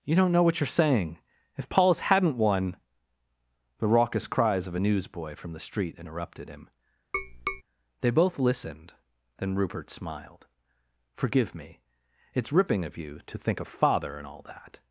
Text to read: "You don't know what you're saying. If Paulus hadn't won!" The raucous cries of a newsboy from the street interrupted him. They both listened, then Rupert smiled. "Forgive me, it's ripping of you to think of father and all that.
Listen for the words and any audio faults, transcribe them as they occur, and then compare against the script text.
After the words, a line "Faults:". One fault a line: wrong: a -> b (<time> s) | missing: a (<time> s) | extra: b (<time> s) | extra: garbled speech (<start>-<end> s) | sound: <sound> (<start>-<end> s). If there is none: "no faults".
"You don't know what you're saying. If Paulus hadn't won!" The raucous cries of a newsboy from the street interrupted him. They both listened, then Rupert smiled. "Forgive me, it's ripping of you to think of father and all that.
Faults:
sound: tap (7.1-7.6 s)